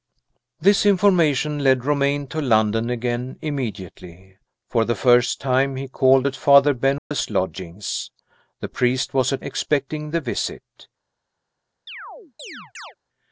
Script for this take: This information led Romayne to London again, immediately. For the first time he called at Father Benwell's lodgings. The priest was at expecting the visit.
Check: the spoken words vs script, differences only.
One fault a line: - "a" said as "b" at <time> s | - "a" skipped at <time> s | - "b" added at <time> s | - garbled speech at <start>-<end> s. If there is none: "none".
none